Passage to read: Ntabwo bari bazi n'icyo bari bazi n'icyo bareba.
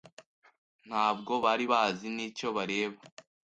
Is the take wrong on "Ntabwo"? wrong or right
right